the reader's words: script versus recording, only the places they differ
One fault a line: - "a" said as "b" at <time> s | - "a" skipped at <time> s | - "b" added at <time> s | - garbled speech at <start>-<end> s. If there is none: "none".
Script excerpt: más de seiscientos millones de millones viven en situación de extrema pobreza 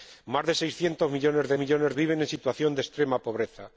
none